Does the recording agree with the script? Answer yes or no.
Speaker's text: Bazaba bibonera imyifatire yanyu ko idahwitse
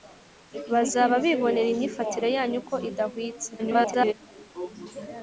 no